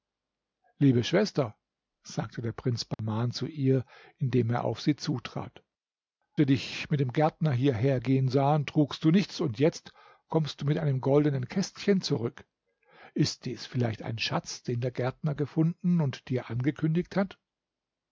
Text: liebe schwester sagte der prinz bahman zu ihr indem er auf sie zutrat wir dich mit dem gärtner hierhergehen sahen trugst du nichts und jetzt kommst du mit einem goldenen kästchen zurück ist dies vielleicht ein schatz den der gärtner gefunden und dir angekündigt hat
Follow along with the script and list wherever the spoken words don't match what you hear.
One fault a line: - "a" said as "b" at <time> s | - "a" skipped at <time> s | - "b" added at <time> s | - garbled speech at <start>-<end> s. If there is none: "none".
none